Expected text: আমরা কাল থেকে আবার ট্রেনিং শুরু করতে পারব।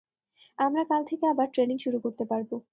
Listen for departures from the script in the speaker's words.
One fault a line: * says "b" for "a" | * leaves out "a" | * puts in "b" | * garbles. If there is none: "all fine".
all fine